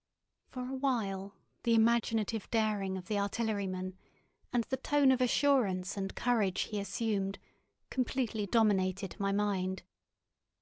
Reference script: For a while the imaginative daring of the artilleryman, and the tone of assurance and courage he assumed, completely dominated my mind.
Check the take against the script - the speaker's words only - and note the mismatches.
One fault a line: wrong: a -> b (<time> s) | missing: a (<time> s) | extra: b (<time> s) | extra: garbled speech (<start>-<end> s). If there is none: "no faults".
no faults